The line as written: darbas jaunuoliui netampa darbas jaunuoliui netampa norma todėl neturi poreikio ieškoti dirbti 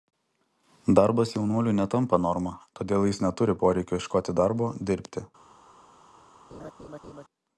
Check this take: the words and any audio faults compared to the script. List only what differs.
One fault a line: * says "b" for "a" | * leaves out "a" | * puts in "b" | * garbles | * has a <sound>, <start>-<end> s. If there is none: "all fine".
* leaves out "darbas jaunuoliui netampa"
* puts in "jis"
* puts in "darbo"
* has a laugh, 6.5-7.2 s